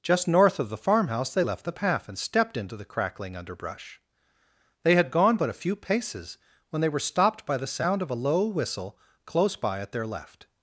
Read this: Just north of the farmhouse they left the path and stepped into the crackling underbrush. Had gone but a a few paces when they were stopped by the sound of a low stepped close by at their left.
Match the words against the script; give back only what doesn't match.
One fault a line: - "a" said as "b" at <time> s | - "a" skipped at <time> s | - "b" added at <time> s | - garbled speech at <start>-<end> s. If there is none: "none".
- "They" added at 4.8 s
- "a" skipped at 5.6 s
- "stepped" said as "whistle" at 8.5 s